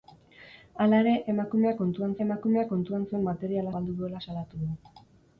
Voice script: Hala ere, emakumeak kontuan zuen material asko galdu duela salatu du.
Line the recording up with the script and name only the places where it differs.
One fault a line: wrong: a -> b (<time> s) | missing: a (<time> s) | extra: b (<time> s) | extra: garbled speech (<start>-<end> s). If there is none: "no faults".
extra: emakumeak kontuan (2.2 s)
missing: asko (3.7 s)